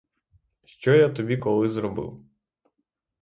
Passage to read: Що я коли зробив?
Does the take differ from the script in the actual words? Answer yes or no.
yes